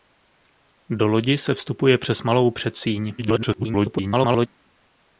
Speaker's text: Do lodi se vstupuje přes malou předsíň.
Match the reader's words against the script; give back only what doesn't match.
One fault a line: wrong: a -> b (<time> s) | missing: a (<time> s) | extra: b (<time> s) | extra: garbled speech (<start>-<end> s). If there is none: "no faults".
extra: garbled speech (3.2-4.5 s)